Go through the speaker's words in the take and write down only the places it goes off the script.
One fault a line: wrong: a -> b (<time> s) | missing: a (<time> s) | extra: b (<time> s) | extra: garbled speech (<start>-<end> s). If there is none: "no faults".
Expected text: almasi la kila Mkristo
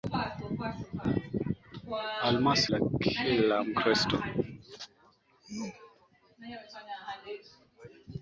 no faults